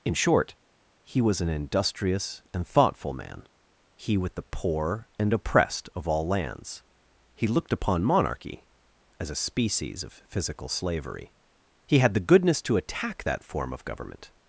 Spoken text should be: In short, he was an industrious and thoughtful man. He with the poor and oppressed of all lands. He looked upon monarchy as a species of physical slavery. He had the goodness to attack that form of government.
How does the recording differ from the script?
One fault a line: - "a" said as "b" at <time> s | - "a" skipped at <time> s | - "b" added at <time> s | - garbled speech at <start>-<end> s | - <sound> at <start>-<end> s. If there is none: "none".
none